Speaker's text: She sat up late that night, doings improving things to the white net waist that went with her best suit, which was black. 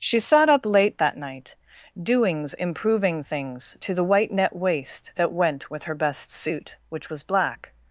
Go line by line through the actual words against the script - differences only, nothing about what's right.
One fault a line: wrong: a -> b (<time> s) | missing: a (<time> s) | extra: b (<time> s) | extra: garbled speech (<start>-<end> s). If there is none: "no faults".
no faults